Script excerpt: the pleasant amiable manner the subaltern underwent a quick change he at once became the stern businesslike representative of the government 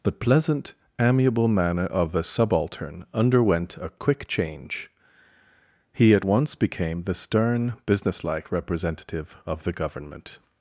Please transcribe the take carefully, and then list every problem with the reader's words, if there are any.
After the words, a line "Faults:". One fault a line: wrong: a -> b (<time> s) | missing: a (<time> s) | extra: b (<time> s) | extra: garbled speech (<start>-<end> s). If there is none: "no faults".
the pleasant amiable manner of the subaltern underwent a quick change he at once became the stern businesslike representative of the government
Faults:
extra: of (1.9 s)